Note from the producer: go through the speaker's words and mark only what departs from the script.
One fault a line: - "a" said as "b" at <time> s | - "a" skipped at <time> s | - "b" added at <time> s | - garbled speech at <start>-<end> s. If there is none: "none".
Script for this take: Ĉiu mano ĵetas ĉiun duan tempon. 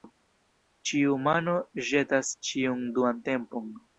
none